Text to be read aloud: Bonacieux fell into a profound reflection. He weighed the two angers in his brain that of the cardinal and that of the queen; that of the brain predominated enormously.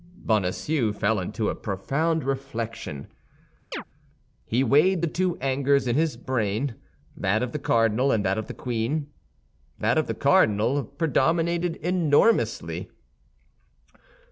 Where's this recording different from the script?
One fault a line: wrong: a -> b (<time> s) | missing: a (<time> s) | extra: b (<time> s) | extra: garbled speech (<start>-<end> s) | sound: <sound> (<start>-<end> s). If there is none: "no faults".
sound: chirp (3.7-3.8 s)
wrong: brain -> cardinal (10.1 s)